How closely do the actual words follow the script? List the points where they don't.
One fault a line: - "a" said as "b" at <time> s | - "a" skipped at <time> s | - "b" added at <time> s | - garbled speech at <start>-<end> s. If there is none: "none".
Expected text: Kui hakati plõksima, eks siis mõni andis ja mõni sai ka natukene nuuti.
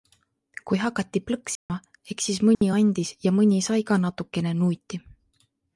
none